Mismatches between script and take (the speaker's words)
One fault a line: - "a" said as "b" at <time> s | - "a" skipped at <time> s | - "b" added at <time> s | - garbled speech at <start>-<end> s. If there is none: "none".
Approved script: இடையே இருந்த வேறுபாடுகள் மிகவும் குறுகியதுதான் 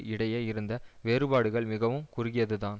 none